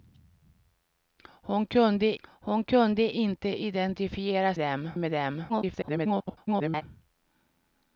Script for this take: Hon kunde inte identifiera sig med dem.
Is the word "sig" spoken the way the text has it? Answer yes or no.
no